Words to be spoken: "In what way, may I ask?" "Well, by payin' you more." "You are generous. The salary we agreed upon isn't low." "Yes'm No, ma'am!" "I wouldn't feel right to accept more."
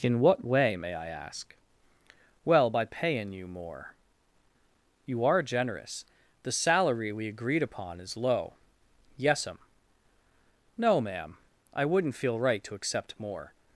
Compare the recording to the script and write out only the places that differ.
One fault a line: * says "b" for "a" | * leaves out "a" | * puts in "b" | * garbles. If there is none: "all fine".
* says "is" for "isn't"